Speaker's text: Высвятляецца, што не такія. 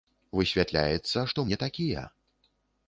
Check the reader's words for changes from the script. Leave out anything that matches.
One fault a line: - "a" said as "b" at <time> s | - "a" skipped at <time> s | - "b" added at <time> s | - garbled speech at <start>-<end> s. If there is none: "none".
none